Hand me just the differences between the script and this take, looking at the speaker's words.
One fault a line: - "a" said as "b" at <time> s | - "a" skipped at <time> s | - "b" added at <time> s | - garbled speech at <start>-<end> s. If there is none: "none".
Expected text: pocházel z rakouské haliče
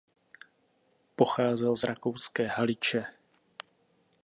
none